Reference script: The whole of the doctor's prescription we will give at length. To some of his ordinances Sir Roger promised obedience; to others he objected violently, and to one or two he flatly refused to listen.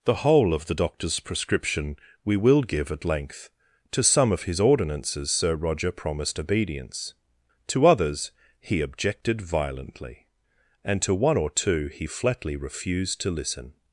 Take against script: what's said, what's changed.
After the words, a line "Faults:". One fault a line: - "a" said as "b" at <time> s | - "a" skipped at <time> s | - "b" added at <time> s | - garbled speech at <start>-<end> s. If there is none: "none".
The whole of the doctor's prescription we will give at length. To some of his ordinances Sir Roger promised obedience; to others he objected violently, and to one or two he flatly refused to listen.
Faults:
none